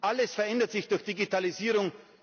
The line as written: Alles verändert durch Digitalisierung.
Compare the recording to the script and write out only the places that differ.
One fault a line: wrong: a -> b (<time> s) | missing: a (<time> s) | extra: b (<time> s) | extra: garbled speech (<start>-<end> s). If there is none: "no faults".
extra: sich (0.7 s)